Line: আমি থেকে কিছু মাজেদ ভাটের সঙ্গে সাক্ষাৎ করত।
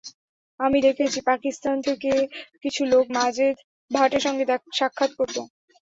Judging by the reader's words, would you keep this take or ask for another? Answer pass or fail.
fail